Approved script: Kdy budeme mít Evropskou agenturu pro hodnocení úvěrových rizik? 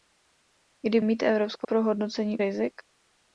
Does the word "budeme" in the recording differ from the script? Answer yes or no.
yes